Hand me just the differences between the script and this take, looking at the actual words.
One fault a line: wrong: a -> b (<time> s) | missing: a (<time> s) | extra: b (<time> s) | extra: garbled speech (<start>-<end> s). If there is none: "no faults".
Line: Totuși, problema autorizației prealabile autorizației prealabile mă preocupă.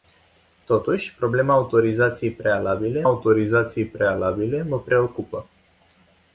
no faults